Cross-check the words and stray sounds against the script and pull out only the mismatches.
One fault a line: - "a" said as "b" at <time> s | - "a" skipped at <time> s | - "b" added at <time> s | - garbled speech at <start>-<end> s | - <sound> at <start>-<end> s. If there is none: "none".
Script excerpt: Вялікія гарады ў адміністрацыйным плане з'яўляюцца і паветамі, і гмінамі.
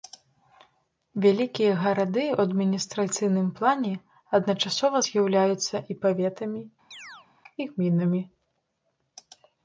- "адначасова" added at 4.4 s
- chirp at 6.9-7.3 s